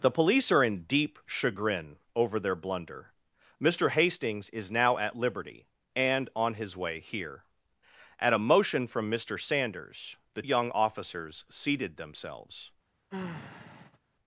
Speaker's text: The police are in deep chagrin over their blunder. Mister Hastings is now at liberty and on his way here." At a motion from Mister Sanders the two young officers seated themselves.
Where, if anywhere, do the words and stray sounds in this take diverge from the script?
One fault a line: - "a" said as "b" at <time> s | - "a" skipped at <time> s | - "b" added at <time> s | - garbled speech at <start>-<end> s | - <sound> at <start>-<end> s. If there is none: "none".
- "two" skipped at 10.4 s
- sigh at 13.1-14.0 s